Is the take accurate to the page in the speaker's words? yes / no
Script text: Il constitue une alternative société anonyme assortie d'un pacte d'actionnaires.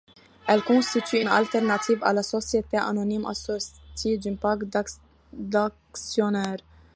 no